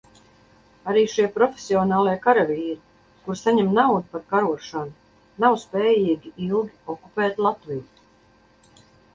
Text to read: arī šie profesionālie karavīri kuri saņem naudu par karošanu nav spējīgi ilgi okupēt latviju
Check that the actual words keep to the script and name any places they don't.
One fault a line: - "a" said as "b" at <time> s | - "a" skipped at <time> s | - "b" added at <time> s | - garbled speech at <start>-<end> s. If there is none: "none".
none